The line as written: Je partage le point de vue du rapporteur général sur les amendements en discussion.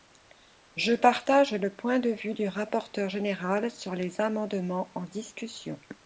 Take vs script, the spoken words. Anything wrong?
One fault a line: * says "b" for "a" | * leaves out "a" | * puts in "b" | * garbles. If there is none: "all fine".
all fine